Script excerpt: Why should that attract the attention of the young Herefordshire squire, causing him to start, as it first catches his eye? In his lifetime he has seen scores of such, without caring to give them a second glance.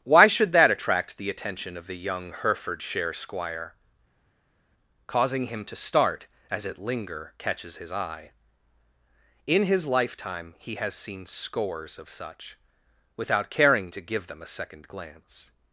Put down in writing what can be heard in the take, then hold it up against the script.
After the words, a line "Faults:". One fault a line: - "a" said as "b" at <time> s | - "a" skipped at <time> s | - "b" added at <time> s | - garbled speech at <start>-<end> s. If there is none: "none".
Why should that attract the attention of the young Herefordshire squire, causing him to start, as it linger catches his eye? In his lifetime he has seen scores of such, without caring to give them a second glance.
Faults:
- "first" said as "linger" at 6.8 s